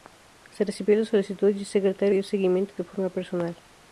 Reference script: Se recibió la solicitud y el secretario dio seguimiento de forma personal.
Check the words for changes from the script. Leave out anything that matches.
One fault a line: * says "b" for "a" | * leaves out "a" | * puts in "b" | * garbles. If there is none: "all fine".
all fine